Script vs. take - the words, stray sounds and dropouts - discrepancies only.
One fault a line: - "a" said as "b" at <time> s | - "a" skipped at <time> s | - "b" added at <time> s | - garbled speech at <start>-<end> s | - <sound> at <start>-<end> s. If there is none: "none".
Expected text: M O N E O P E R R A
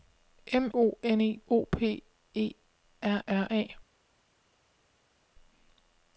none